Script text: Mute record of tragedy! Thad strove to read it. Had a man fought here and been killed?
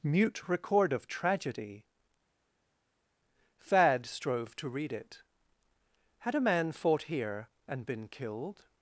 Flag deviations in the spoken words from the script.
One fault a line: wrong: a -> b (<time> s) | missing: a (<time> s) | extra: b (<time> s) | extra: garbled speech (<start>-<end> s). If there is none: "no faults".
no faults